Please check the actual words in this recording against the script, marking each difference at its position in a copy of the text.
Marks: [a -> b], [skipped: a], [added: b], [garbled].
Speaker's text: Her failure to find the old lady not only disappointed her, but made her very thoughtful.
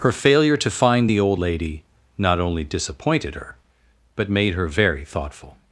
Her failure to find the old lady not only disappointed her, but made her very thoughtful.